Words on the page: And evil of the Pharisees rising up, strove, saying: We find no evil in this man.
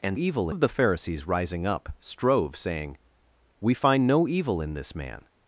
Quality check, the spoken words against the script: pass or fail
pass